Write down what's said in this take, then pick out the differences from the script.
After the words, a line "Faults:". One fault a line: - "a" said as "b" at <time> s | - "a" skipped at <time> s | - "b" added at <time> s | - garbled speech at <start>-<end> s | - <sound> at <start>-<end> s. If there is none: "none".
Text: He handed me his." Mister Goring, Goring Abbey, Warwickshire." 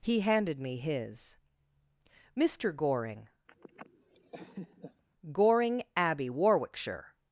He handed me his." Mister Goring, Goring Abbey, Warwickshire."
Faults:
- laugh at 3.5-5.0 s